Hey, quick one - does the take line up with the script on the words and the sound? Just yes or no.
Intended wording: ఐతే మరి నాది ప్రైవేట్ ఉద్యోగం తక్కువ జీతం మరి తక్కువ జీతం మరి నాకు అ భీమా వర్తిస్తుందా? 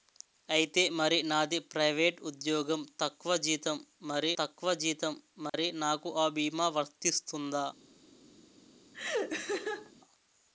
no